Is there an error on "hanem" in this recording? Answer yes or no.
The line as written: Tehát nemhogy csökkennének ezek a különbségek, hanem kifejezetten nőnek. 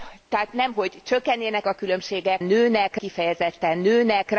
yes